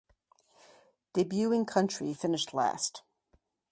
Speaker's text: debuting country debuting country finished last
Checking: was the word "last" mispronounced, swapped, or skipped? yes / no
no